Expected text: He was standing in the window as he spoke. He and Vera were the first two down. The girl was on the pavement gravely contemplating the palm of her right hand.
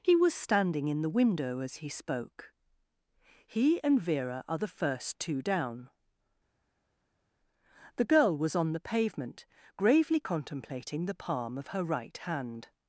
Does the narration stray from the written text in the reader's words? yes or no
yes